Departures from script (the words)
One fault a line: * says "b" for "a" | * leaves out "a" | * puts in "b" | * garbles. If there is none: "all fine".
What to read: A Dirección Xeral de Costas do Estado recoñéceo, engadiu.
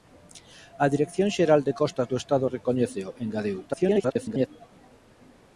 * garbles